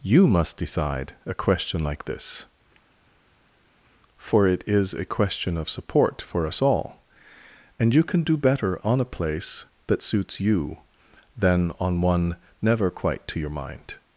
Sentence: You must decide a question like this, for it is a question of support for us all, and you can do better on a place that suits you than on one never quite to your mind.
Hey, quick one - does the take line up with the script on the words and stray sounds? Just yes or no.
yes